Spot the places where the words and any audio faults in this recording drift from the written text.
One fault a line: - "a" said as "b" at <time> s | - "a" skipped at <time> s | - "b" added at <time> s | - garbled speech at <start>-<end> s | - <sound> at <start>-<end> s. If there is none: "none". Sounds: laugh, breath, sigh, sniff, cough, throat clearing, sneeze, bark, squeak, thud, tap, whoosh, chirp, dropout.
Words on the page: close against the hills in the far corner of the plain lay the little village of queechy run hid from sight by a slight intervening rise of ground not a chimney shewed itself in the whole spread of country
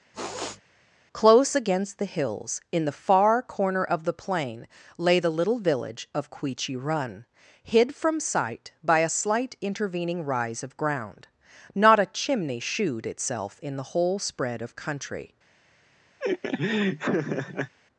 - sniff at 0.1-0.6 s
- laugh at 16.2-17.7 s